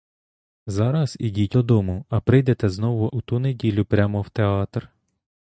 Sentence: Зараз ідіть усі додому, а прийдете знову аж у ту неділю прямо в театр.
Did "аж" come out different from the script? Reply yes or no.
yes